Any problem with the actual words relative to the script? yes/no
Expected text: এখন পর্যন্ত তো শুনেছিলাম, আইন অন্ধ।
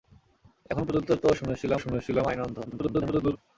yes